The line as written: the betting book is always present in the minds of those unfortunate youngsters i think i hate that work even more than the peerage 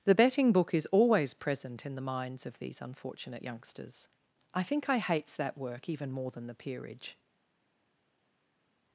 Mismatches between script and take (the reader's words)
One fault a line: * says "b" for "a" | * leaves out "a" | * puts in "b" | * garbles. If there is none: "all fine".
* says "these" for "those"
* says "hates" for "hate"